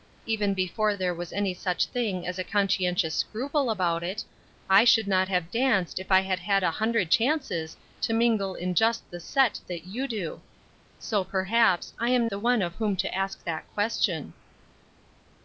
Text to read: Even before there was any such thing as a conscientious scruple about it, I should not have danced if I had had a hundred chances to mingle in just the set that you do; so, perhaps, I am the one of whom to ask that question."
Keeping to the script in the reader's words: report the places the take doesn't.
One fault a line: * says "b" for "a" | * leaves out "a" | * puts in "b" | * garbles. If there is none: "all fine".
all fine